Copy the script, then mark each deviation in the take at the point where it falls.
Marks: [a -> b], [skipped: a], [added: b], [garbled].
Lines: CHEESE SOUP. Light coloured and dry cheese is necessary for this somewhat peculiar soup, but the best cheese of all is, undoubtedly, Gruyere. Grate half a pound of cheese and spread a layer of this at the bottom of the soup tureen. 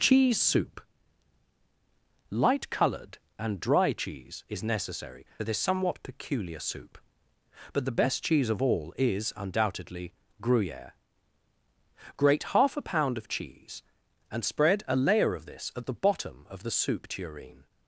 CHEESE SOUP. Light coloured and dry cheese is necessary [skipped: for] this somewhat peculiar soup, but the best cheese of all is, undoubtedly, Gruyere. Grate half a pound of cheese and spread a layer of this at the bottom of the soup tureen.